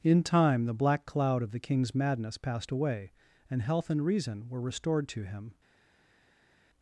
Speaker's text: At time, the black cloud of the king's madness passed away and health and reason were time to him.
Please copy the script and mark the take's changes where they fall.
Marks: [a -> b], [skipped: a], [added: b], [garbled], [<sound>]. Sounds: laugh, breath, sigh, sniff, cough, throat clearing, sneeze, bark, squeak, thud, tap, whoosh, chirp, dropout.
[At -> In] time, the black cloud of the king's madness passed away and health and reason were [time -> restored] to him.